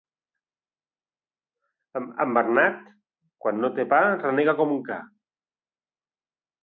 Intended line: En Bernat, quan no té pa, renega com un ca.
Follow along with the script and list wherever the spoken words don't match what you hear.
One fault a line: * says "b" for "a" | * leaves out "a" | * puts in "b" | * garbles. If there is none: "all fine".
all fine